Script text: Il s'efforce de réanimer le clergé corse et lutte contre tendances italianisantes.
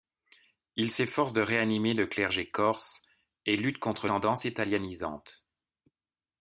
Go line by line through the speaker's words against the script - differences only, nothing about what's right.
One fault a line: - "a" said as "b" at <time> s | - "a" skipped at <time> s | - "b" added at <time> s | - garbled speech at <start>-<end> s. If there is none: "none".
none